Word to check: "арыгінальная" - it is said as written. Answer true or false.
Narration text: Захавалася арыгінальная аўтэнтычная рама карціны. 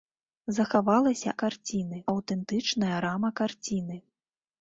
false